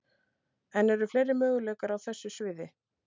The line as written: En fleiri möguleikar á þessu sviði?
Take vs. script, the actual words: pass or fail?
fail